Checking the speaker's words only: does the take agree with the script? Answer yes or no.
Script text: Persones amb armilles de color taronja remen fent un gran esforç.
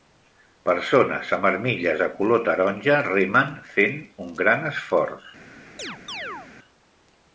yes